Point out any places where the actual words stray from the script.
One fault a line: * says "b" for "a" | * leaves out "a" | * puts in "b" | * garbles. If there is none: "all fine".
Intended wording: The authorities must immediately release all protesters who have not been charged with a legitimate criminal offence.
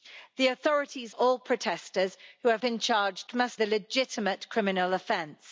* leaves out "must immediately release"
* leaves out "not"
* says "must" for "with"